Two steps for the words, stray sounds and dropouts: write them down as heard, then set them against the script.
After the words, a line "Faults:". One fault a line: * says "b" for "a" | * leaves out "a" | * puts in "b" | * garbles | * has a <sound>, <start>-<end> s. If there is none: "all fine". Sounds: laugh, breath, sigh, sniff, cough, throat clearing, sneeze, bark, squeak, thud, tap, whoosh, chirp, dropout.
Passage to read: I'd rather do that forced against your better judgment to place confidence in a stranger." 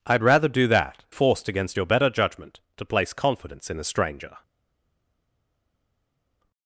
I'd rather do that forced against your better judgment to place confidence in a stranger."
Faults:
all fine